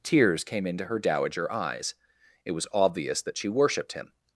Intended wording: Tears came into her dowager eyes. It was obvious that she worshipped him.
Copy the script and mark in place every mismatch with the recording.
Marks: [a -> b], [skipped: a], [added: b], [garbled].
Tears came into her dowager eyes. It was obvious that she worshipped him.